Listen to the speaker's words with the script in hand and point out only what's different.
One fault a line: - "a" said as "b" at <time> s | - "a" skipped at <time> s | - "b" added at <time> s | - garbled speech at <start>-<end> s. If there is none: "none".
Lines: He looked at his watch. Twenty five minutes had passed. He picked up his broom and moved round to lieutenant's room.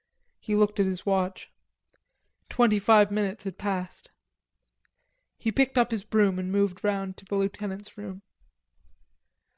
- "the" added at 7.2 s